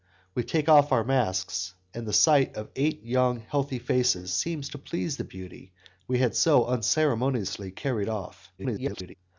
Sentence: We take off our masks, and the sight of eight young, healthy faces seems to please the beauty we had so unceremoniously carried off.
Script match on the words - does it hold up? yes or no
no